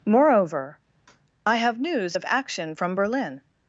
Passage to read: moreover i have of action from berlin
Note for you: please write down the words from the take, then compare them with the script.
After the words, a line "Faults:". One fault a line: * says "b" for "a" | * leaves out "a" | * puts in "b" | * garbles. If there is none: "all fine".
moreover i have news of action from berlin
Faults:
* puts in "news"